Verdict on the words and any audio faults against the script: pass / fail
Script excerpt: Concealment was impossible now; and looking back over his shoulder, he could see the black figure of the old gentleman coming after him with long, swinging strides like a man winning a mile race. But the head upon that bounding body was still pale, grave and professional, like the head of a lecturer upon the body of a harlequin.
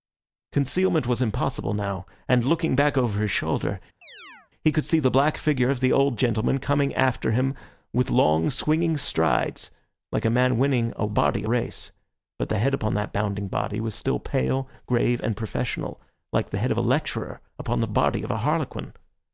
fail